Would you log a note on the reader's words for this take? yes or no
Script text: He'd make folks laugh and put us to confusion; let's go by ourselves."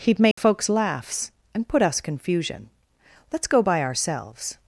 yes